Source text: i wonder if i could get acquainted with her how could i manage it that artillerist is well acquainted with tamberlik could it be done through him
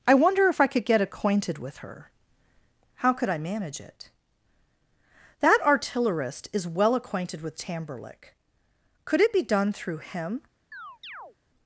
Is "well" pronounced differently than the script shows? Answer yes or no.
no